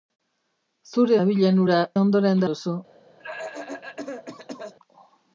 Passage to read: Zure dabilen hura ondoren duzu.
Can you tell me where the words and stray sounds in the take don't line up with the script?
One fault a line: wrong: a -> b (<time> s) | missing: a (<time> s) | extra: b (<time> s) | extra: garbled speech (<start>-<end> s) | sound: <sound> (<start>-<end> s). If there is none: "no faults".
sound: cough (3.2-4.7 s)